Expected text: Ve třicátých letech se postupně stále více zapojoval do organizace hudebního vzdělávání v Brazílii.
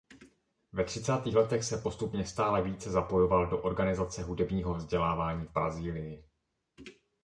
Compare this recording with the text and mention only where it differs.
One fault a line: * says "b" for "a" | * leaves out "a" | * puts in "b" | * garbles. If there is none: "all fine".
all fine